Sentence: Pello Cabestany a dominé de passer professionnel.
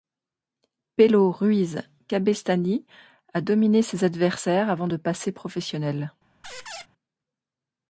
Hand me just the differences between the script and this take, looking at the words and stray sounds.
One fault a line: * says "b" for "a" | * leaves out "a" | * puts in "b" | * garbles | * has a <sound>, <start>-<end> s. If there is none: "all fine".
* puts in "Ruiz"
* puts in "ses adversaires avant"
* has a squeak, 6.4-6.9 s